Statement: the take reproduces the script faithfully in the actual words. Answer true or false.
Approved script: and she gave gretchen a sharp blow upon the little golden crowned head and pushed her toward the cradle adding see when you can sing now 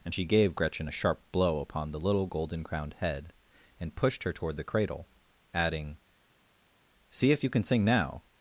false